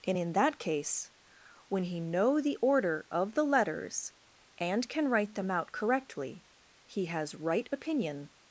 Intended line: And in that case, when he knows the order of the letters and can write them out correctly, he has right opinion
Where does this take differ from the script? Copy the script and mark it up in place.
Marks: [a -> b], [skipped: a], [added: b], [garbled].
And in that case, when he [knows -> know] the order of the letters and can write them out correctly, he has right opinion